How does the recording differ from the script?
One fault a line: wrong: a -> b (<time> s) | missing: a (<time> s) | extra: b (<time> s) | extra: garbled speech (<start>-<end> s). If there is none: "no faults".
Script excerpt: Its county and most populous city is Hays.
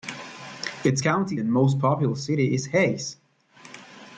no faults